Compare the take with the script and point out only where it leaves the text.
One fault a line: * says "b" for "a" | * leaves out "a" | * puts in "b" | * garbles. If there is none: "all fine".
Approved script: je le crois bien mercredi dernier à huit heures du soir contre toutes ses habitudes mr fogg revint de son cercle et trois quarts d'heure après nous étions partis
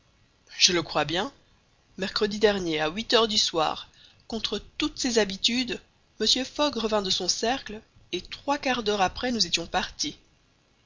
all fine